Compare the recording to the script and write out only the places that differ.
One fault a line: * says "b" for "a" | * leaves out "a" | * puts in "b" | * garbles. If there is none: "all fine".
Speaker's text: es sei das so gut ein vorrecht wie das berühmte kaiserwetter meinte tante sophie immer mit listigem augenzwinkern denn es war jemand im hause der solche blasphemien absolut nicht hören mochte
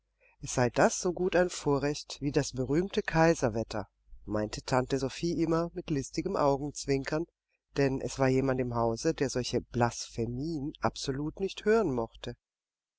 all fine